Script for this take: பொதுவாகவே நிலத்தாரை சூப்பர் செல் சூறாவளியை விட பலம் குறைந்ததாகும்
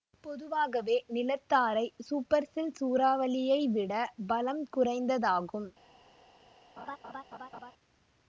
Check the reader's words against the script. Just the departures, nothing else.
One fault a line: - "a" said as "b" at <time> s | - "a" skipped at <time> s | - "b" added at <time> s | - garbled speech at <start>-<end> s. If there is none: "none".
none